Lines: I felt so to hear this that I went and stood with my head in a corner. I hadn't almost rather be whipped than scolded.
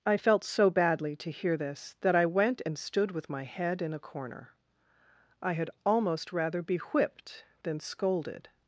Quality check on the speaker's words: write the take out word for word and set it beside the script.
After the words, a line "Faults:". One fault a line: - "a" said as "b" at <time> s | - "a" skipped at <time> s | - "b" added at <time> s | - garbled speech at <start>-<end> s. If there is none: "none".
I felt so badly to hear this that I went and stood with my head in a corner. I had almost rather be whipped than scolded.
Faults:
- "badly" added at 0.7 s
- "hadn't" said as "had" at 5.5 s